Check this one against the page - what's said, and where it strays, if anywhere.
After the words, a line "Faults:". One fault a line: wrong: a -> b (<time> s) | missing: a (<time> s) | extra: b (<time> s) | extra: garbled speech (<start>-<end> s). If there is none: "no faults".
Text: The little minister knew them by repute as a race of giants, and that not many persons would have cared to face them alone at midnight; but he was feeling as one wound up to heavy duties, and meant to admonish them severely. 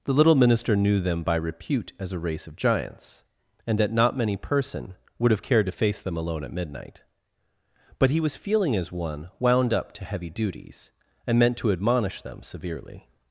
The little minister knew them by repute as a race of giants, and that not many person would have cared to face them alone at midnight; but he was feeling as one wound up to heavy duties, and meant to admonish them severely.
Faults:
wrong: persons -> person (4.3 s)